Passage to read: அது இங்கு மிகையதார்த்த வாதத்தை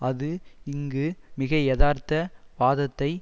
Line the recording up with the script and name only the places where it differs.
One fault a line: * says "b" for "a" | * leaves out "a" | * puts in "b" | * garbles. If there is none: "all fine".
all fine